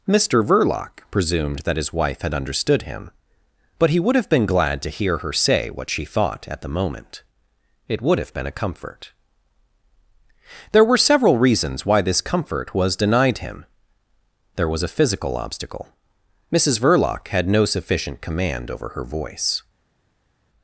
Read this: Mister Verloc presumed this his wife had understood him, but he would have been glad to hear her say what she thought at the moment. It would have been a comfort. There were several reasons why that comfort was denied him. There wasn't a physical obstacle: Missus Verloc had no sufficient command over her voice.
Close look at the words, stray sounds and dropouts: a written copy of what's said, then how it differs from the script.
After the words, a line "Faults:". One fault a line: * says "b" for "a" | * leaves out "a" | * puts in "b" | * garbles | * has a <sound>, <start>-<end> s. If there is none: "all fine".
Mister Verloc presumed that his wife had understood him, but he would have been glad to hear her say what she thought at the moment. It would have been a comfort. There were several reasons why this comfort was denied him. There was a physical obstacle: Missus Verloc had no sufficient command over her voice.
Faults:
* says "that" for "this"
* says "this" for "that"
* says "was" for "wasn't"